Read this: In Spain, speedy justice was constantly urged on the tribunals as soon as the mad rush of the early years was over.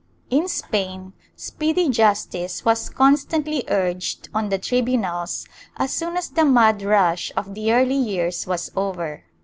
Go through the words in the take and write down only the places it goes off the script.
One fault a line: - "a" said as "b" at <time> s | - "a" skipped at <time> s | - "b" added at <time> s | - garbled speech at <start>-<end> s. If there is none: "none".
none